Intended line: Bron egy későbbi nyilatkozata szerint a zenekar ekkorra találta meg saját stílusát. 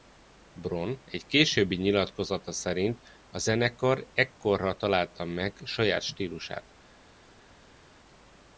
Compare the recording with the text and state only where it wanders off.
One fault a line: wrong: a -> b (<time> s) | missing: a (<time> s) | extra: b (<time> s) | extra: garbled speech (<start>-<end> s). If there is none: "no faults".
no faults